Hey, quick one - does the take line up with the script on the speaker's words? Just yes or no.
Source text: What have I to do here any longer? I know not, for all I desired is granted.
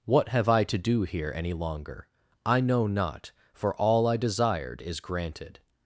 yes